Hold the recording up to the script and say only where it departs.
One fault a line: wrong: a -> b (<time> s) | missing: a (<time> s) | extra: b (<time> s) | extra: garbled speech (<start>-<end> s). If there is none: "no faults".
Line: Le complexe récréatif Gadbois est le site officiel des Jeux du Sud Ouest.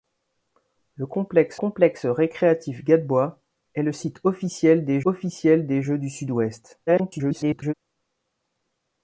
extra: complexe (1.5 s)
extra: officiel des (5.0 s)
extra: garbled speech (6.9-7.7 s)